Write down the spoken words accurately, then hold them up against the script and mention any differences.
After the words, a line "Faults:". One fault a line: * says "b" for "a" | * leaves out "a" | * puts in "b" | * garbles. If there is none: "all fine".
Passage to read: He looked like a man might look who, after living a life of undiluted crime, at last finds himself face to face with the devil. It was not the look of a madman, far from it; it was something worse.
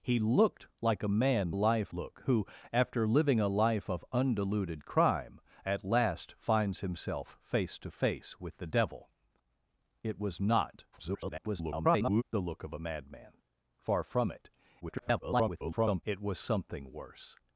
He looked like a man life look who, after living a life of undiluted crime, at last finds himself face to face with the devil. It was not [garbled] the look of a madman, far from it; [garbled] it was something worse.
Faults:
* says "life" for "might"
* garbles
* garbles